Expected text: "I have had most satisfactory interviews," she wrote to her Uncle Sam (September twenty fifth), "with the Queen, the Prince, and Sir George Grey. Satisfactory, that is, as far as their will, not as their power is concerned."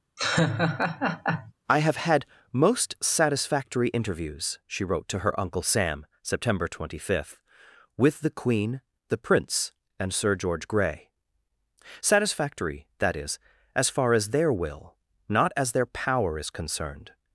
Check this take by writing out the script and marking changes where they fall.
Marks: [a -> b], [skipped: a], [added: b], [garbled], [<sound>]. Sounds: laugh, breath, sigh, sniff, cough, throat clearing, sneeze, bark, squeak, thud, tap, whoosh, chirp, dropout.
[laugh] "I have had most satisfactory interviews," she wrote to her Uncle Sam (September twenty fifth), "with the Queen, the Prince, and Sir George Grey. Satisfactory, that is, as far as their will, not as their power is concerned."